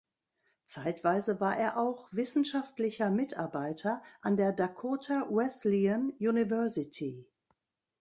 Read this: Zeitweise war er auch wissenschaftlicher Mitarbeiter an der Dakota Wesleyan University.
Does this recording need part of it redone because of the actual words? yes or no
no